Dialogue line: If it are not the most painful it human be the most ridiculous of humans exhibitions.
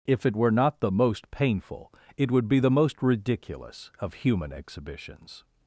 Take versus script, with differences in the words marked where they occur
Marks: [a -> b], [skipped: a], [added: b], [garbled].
If it [are -> were] not the most painful it [human -> would] be the most ridiculous of [humans -> human] exhibitions.